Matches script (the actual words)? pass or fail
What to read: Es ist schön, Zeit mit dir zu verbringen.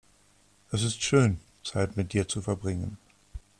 pass